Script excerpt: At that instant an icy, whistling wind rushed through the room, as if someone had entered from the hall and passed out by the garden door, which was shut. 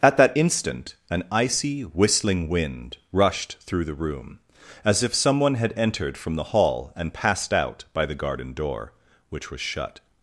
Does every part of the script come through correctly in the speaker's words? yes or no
yes